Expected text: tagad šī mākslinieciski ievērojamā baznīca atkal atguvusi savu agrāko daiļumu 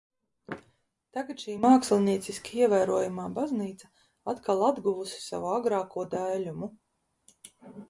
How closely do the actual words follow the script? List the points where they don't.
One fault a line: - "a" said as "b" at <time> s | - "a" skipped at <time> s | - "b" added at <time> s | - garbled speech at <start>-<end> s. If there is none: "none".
none